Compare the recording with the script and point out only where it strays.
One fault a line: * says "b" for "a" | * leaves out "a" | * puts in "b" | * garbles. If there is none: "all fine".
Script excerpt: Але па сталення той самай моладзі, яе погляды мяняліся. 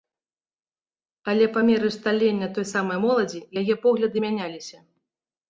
* puts in "меры"